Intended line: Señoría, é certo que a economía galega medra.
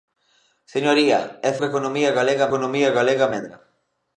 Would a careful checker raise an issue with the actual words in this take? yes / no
yes